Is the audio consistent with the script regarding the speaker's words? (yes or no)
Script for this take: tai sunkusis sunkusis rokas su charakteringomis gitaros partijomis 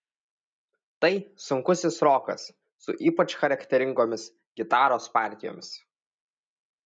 no